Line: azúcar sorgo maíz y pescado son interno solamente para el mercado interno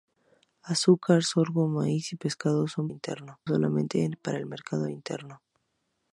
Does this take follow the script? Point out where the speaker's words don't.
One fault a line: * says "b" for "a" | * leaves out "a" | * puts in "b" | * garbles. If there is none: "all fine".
all fine